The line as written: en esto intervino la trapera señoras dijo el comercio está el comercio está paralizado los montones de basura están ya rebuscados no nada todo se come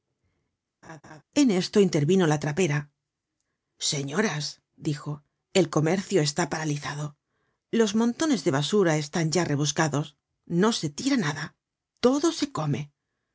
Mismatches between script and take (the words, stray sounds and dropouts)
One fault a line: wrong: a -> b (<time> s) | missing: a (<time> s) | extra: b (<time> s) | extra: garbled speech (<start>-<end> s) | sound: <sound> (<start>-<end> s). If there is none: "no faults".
sound: laugh (0.8-1.2 s)
missing: el comercio está (6.5 s)
extra: se tira (10.7 s)